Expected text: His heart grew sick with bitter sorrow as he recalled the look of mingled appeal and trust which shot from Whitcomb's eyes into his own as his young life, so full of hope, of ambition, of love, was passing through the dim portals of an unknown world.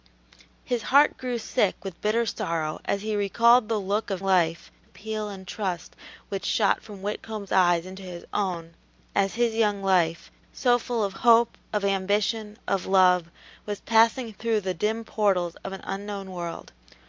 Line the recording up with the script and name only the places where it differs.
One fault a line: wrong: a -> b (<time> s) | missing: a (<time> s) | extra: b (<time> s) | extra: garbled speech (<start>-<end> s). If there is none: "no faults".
wrong: mingled -> life (4.2 s)